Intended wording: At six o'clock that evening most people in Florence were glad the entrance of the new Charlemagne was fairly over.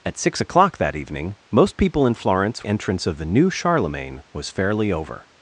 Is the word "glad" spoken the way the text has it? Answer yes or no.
no